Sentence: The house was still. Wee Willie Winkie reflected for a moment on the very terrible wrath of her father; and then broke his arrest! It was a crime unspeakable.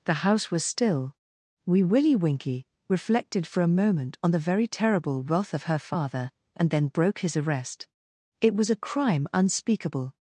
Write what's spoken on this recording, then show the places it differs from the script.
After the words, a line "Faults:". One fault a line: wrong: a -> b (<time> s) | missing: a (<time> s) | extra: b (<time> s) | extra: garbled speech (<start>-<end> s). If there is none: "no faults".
The house was still. Wee Willie Winkie reflected for a moment on the very terrible wrath of her father; and then broke his arrest! It was a crime unspeakable.
Faults:
no faults